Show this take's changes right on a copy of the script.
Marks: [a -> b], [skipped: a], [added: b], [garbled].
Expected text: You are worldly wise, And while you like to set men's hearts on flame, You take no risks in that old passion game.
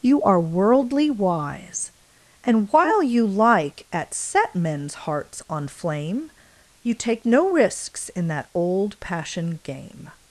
You are worldly wise, And while you like [to -> at] set men's hearts on flame, You take no risks in that old passion game.